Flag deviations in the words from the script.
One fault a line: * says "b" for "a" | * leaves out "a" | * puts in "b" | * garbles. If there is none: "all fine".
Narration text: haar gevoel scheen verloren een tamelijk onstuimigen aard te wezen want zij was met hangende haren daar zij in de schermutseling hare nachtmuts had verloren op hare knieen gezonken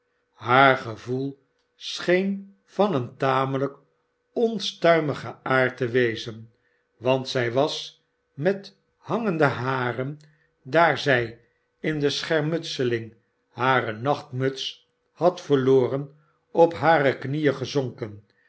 * says "van" for "verloren"